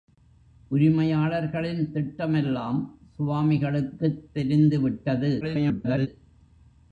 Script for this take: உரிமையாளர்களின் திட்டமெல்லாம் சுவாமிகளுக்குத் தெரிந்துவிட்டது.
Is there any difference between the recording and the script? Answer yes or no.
yes